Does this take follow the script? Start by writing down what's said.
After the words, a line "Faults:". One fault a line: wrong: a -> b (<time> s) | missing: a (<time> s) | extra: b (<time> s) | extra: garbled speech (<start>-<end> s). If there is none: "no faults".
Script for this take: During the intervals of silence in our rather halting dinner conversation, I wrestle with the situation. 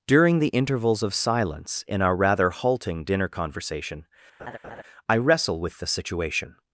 During the intervals of silence in our rather halting dinner conversation, I wrestle with the situation.
Faults:
no faults